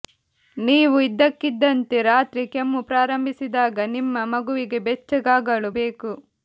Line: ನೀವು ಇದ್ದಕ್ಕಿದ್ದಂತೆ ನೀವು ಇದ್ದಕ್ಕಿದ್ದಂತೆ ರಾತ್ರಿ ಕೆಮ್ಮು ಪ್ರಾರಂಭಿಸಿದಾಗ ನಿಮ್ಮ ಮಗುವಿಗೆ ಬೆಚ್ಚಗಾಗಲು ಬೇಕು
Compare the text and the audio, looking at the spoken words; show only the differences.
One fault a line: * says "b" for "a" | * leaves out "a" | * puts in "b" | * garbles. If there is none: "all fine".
* leaves out "ನೀವು ಇದ್ದಕ್ಕಿದ್ದಂತೆ"